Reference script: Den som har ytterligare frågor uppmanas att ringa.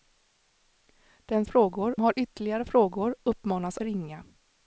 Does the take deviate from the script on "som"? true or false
true